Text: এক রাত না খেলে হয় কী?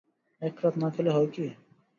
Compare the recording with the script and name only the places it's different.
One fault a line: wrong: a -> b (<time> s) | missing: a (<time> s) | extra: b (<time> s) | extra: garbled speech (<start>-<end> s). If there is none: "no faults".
no faults